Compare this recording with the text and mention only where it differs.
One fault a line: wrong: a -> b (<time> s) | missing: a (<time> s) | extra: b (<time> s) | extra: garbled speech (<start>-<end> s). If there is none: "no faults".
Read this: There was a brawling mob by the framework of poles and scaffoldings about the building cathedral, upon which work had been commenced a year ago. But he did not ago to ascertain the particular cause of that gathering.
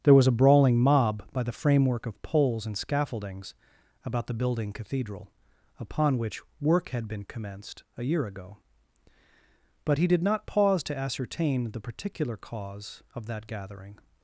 wrong: ago -> pause (10.5 s)